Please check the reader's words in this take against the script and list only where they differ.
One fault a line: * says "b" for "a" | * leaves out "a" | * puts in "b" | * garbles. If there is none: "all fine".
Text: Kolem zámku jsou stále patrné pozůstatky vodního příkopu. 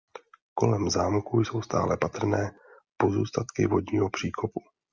all fine